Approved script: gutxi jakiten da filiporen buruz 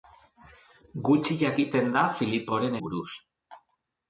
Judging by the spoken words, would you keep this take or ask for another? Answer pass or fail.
pass